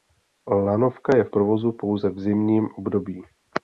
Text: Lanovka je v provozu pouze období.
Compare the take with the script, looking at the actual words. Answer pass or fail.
fail